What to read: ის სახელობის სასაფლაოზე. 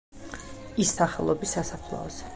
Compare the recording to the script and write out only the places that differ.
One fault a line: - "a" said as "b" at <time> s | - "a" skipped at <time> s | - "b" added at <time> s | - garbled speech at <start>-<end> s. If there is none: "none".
none